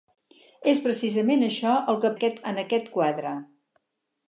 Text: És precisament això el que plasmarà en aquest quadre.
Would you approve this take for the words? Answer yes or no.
no